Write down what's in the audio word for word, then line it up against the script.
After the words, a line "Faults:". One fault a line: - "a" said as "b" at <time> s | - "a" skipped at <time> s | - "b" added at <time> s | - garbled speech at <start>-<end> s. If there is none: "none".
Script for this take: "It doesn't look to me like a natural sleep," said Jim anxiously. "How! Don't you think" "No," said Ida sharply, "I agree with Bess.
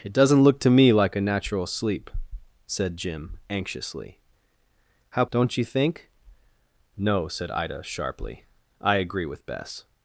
"It doesn't look to me like a natural sleep," said Jim anxiously. "How! Don't you think" "No," said Ida sharply, "I agree with Bess.
Faults:
none